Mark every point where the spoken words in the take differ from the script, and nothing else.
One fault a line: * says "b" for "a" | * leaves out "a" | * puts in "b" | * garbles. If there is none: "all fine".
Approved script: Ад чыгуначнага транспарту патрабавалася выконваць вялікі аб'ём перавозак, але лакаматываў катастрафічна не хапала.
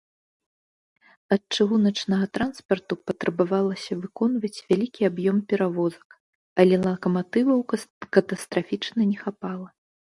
all fine